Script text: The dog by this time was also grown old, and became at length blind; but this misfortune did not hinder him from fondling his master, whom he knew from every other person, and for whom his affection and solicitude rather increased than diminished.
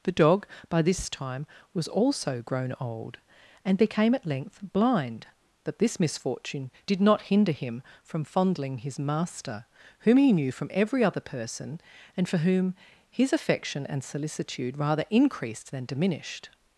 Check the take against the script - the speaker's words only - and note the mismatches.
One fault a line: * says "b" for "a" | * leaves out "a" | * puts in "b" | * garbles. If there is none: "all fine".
all fine